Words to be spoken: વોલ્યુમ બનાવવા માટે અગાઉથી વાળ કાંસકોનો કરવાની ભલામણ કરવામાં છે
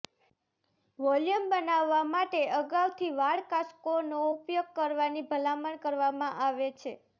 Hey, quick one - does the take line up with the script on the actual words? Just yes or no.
no